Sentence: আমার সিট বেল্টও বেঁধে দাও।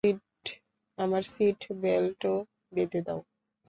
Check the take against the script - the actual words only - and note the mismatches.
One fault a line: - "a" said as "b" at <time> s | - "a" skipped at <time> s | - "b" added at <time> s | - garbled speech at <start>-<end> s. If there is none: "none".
none